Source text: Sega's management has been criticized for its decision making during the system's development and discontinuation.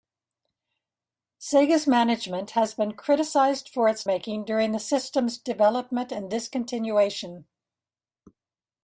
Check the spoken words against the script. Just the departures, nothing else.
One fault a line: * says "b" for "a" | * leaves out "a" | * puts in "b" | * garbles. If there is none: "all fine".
* leaves out "decision"